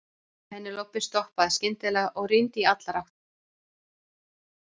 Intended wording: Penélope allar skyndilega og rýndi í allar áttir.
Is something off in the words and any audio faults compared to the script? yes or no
yes